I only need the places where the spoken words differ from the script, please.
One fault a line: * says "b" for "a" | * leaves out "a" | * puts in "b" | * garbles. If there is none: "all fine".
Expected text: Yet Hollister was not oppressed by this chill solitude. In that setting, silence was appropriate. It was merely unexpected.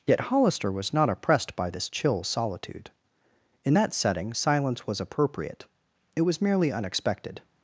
all fine